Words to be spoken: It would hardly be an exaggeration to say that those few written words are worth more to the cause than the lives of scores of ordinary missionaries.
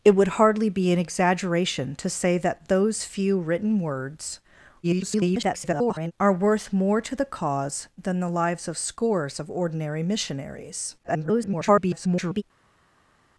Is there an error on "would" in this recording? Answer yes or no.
no